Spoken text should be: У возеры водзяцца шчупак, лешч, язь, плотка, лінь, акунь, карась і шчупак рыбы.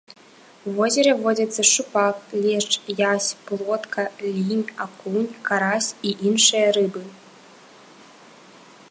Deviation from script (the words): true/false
true